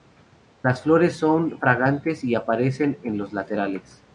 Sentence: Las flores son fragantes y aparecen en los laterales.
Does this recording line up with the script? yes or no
yes